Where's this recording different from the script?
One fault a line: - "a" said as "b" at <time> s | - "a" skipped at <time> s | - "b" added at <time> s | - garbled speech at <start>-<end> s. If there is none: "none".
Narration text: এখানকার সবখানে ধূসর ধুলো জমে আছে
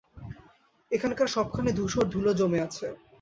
none